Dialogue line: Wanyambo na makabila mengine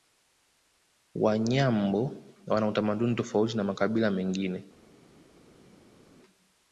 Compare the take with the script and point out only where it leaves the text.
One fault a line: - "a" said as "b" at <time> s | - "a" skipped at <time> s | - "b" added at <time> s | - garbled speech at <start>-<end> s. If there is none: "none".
- "wana utamaduni tofauti" added at 2.5 s